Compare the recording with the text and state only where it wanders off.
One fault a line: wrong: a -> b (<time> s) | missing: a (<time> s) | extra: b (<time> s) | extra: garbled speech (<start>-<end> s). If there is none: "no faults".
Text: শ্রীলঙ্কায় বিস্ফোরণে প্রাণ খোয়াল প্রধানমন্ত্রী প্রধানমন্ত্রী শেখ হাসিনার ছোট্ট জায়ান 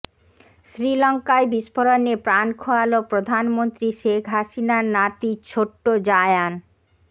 missing: প্রধানমন্ত্রী (3.9 s)
extra: নাতি (4.9 s)